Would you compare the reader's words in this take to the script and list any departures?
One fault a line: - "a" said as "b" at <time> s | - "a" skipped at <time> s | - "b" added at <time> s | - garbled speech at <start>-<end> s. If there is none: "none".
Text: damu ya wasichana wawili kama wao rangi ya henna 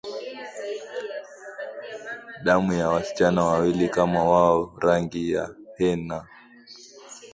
none